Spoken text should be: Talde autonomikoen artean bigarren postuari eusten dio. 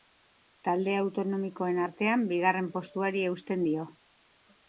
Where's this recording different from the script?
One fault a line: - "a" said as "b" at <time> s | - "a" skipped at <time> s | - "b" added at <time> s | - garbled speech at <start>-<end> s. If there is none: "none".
none